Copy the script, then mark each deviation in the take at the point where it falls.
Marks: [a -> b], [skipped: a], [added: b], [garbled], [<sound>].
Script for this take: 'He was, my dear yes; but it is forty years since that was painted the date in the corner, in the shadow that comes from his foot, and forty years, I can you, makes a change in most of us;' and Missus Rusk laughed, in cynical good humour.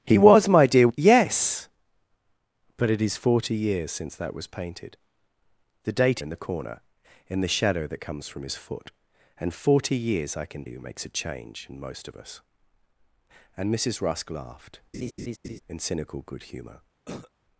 'He was, my dear yes; but it is forty years since that was painted the date in the corner, in the shadow that comes from his foot, and forty years, I can you, makes a change in most of us;' and Missus Rusk laughed, [laugh] in cynical good humour. [cough]